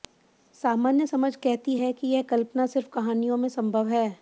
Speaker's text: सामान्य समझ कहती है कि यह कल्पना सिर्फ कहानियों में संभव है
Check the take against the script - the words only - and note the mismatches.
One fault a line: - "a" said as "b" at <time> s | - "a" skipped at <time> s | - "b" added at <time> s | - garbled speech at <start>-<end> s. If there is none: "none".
none